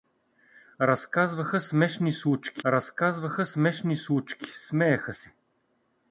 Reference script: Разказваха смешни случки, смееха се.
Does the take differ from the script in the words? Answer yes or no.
yes